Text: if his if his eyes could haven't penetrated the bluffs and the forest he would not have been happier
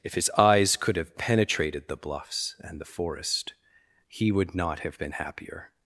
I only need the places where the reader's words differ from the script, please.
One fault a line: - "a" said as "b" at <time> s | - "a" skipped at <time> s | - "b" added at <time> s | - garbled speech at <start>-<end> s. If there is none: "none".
- "if his" skipped at 0.3 s
- "haven't" said as "have" at 0.9 s